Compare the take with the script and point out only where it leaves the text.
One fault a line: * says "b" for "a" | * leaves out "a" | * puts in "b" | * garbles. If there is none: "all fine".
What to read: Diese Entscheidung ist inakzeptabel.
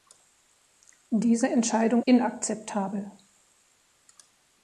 * leaves out "ist"